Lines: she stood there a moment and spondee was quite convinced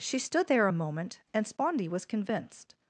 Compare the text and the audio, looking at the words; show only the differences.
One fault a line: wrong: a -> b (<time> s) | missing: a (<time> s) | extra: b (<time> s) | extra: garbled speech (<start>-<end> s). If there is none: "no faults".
missing: quite (2.0 s)